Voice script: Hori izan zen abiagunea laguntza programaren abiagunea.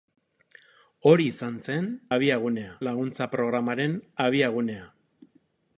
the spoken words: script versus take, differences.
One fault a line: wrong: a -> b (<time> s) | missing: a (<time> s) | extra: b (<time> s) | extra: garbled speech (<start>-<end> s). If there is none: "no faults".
no faults